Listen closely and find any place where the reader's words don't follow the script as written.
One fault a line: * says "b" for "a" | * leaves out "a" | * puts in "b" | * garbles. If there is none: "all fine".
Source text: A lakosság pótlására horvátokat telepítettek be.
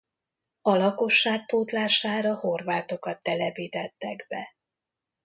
all fine